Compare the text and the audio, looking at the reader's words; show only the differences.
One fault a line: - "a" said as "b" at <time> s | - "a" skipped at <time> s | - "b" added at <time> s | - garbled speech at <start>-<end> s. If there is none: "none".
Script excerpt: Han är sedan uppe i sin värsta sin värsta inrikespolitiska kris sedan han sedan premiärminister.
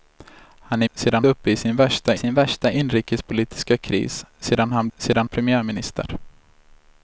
none